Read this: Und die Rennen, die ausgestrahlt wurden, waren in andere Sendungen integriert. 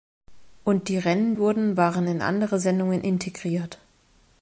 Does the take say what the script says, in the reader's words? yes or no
no